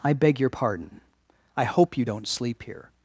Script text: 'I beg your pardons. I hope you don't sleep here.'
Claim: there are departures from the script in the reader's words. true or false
true